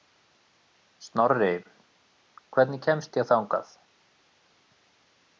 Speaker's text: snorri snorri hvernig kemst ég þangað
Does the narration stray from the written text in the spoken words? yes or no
yes